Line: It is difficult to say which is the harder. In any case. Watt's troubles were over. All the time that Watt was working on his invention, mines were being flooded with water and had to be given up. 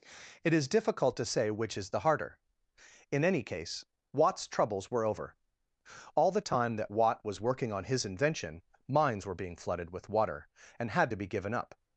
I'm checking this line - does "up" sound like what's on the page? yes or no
yes